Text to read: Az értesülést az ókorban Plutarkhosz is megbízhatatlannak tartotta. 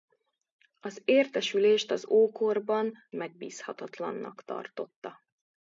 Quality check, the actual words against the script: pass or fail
fail